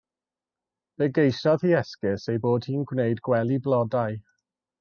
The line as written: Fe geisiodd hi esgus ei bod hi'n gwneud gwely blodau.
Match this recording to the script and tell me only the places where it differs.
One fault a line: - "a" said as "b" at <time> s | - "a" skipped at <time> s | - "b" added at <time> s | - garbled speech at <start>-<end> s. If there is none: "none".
none